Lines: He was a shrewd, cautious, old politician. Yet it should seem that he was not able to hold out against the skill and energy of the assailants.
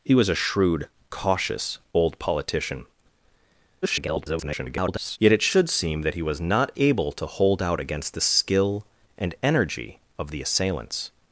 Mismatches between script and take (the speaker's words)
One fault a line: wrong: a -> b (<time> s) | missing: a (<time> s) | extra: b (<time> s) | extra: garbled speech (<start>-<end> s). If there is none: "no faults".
extra: garbled speech (3.8-5.2 s)